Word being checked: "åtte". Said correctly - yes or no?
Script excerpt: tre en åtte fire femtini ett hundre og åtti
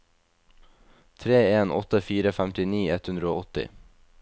yes